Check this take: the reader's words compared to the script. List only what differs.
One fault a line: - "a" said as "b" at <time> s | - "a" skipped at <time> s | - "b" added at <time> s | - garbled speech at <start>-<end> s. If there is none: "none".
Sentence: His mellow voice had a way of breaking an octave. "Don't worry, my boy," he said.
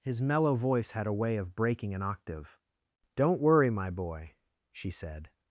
- "he" said as "she" at 4.7 s